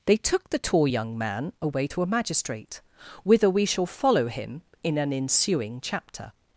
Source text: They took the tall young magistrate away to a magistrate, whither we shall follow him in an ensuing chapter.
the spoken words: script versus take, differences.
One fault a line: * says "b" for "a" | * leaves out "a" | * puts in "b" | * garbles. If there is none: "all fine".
* says "man" for "magistrate"